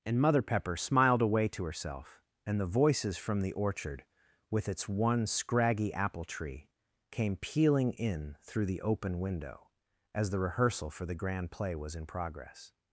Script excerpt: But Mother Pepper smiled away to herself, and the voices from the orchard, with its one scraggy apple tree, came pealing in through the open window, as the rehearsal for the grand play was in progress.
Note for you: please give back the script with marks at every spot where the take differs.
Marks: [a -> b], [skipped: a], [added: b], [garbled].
[But -> And] Mother Pepper smiled away to herself, and the voices from the orchard, with its one scraggy apple tree, came pealing in through the open window, as the rehearsal for the grand play was in progress.